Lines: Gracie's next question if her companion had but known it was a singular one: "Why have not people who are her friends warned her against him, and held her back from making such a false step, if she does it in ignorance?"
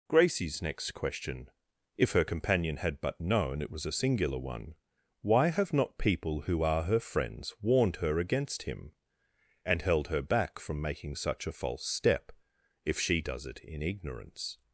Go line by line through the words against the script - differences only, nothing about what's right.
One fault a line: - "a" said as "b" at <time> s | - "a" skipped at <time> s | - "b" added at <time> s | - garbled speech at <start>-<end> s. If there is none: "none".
none